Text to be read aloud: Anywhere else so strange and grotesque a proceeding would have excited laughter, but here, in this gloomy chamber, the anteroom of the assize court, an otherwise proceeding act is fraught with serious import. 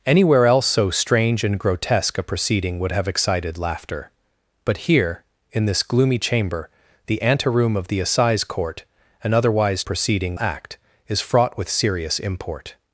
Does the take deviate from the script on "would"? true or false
false